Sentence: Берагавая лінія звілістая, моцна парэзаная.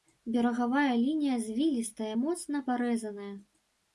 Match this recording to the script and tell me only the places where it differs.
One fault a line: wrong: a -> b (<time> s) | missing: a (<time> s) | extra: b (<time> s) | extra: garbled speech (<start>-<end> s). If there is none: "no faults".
no faults